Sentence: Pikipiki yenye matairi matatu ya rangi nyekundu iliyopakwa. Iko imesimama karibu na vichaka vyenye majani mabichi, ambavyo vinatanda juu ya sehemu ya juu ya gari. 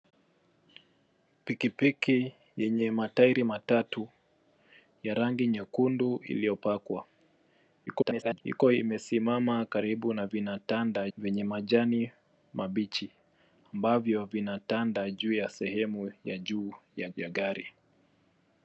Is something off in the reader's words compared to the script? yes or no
yes